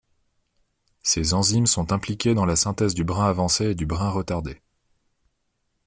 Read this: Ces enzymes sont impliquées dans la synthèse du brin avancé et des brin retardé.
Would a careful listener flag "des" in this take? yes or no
yes